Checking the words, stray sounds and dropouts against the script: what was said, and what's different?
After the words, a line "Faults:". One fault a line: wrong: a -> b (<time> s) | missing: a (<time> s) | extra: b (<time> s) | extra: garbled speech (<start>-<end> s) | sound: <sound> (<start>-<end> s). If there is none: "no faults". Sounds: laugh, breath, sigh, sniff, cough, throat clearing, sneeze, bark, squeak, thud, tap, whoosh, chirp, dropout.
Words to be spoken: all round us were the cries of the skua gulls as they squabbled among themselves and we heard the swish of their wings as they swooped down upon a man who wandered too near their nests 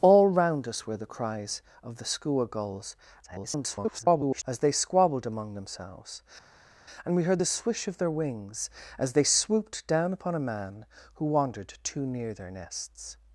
all round us were the cries of the skua gulls [garbled] as they squabbled among themselves and we heard the swish of their wings as they swooped down upon a man who wandered too near their nests
Faults:
extra: garbled speech (3.2-4.4 s)